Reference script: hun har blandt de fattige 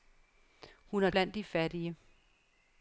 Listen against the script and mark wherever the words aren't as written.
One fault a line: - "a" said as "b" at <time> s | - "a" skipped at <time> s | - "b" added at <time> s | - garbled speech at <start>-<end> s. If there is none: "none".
none